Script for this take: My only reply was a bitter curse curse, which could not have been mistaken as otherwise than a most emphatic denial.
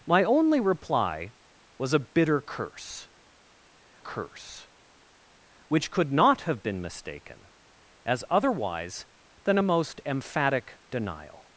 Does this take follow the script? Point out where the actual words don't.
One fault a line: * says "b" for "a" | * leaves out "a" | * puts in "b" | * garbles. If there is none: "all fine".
all fine